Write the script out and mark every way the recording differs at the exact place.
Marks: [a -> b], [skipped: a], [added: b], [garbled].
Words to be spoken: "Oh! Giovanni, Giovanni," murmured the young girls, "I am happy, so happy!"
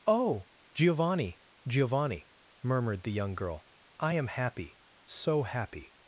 "Oh! Giovanni, Giovanni," murmured the young [girls, -> girl] "I am happy, so happy!"